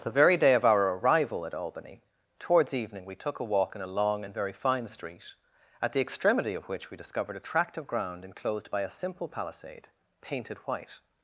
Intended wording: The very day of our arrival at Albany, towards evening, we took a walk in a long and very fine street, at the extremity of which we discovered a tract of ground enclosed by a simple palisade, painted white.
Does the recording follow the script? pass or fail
pass